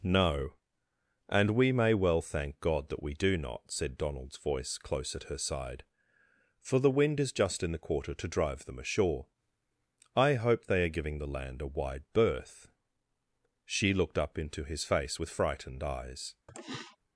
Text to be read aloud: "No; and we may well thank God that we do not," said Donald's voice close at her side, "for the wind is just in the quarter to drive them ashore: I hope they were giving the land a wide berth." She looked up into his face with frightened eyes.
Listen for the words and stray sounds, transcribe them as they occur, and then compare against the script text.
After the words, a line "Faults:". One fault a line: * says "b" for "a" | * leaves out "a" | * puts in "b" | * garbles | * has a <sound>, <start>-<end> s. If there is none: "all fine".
"No; and we may well thank God that we do not," said Donald's voice close at her side, "for the wind is just in the quarter to drive them ashore: I hope they are giving the land a wide berth." She looked up into his face with frightened eyes.
Faults:
* says "are" for "were"
* has a throat clearing, 16.5-17.0 s